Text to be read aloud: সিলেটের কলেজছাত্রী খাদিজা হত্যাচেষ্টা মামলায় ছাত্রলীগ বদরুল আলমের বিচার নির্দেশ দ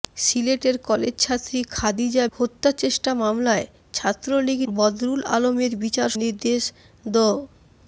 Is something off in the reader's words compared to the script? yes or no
no